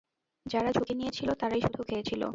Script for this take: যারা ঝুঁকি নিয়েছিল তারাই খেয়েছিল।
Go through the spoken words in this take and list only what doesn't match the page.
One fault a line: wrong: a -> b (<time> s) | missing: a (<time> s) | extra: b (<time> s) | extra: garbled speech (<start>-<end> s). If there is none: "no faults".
extra: শুধু (1.6 s)